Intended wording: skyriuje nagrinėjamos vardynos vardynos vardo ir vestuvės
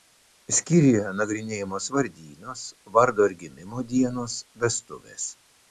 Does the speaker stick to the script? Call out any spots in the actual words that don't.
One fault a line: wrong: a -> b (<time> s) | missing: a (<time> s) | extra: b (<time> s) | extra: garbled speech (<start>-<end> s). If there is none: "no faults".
missing: vardynos (2.6 s)
extra: gimimo dienos (3.5 s)